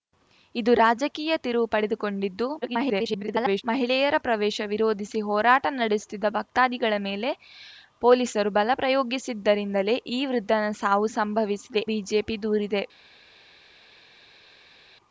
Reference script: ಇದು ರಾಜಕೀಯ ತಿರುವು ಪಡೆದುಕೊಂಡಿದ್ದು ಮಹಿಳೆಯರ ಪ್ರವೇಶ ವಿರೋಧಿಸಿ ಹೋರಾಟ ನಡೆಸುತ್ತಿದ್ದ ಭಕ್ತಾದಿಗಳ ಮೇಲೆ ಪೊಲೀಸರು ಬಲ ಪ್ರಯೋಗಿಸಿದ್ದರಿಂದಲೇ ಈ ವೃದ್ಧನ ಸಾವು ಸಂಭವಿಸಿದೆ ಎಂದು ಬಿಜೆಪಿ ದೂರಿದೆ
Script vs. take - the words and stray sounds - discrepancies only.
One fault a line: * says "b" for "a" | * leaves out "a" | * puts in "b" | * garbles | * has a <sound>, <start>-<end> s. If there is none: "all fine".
* garbles
* leaves out "ಎಂದು"